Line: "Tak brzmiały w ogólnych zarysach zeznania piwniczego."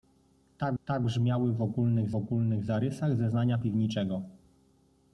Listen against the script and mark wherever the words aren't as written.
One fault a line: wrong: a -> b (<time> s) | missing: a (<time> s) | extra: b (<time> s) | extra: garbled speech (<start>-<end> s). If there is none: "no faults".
extra: tak (0.8 s)
extra: ogólnych (2.2 s)